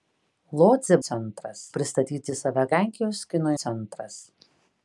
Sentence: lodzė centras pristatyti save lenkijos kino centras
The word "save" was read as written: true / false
true